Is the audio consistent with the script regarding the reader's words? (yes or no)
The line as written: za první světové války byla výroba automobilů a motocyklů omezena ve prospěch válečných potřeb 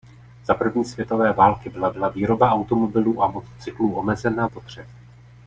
no